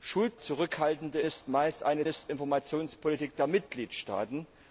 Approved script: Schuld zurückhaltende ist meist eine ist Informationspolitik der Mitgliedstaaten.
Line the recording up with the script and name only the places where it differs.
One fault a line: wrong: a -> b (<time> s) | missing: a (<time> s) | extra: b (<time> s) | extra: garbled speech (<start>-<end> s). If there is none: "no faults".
no faults